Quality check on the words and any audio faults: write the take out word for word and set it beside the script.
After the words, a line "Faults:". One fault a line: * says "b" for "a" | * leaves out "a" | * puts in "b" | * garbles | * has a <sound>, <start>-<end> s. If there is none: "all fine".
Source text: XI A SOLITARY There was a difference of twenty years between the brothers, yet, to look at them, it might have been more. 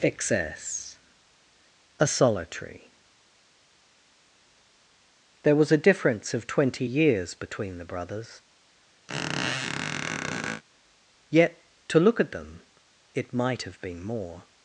Excess A SOLITARY There was a difference of twenty years between the brothers, yet, to look at them, it might have been more.
Faults:
* says "Excess" for "XI"
* has a squeak, 9.1-10.6 s